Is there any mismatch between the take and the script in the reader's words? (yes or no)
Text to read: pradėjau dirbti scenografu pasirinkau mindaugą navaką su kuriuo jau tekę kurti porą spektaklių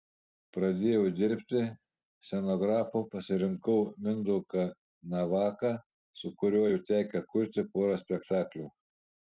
no